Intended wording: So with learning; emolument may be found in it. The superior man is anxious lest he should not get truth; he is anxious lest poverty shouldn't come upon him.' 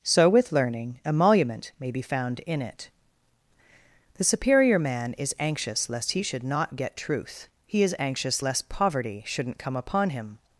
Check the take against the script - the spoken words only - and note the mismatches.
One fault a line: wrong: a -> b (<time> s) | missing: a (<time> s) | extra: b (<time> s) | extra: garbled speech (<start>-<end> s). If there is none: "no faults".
no faults